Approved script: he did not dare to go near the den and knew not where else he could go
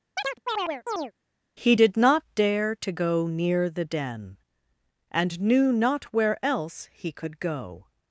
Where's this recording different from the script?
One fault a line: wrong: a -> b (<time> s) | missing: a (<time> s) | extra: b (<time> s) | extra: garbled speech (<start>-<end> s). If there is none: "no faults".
no faults